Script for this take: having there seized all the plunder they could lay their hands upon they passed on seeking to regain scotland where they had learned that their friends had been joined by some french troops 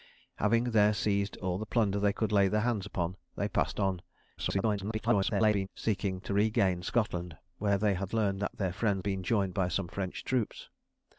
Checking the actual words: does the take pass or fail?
fail